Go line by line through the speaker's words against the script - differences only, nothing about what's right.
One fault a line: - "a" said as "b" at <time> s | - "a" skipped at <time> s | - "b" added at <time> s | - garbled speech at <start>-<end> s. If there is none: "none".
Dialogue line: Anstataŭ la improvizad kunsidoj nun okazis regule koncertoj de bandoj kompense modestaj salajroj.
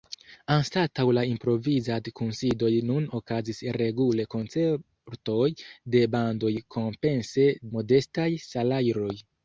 none